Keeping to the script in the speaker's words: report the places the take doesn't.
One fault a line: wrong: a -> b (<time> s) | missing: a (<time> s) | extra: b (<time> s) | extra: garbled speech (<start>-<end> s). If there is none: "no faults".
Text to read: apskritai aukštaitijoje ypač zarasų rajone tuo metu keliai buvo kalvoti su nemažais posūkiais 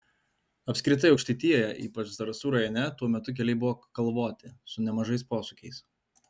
no faults